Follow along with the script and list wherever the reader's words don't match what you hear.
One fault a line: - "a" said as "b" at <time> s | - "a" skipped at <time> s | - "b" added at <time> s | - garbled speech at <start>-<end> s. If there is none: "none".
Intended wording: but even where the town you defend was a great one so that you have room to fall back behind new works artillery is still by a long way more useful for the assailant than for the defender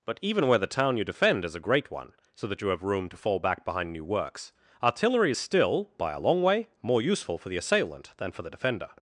- "was" said as "is" at 1.4 s